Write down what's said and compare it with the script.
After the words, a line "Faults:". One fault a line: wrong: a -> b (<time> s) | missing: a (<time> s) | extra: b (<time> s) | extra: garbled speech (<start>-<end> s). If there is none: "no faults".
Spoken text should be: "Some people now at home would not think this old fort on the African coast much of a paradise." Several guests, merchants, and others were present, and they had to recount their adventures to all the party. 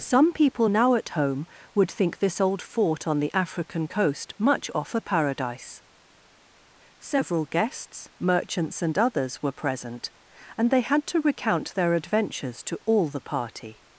"Some people now at home would think this old fort on the African coast much off a paradise." Several guests, merchants, and others were present, and they had to recount their adventures to all the party.
Faults:
missing: not (1.9 s)
wrong: of -> off (4.7 s)